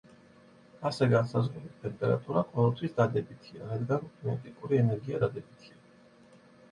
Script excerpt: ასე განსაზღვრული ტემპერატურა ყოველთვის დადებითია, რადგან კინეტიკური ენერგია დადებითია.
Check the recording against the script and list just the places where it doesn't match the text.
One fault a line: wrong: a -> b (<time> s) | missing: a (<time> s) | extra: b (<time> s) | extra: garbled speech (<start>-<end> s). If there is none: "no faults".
no faults